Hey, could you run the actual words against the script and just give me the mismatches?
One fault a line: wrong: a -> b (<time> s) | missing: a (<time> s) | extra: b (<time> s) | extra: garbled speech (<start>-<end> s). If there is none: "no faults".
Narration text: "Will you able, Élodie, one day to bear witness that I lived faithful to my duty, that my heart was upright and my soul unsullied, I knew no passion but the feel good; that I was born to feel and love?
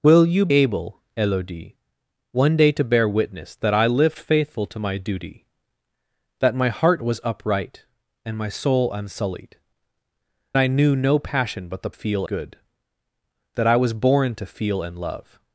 no faults